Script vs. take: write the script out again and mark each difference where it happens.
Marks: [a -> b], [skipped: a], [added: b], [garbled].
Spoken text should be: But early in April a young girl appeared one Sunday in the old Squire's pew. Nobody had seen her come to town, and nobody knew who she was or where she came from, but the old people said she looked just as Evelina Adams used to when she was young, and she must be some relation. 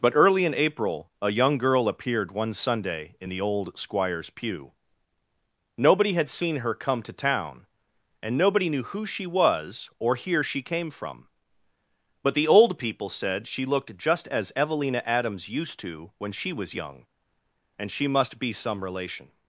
But early in April a young girl appeared one Sunday in the old Squire's pew. Nobody had seen her come to town, and nobody knew who she was or [where -> here] she came from, but the old people said she looked just as Evelina Adams used to when she was young, and she must be some relation.